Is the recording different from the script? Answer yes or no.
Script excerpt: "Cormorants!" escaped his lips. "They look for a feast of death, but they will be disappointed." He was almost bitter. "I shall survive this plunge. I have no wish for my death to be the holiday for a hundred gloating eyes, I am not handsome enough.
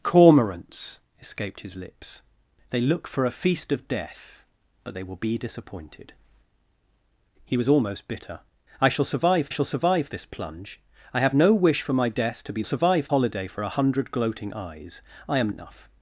yes